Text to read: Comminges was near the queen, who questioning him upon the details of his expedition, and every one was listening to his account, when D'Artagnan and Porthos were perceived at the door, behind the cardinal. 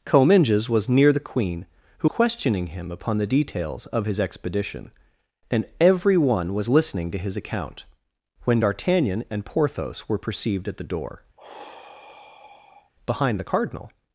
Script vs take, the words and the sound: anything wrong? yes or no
yes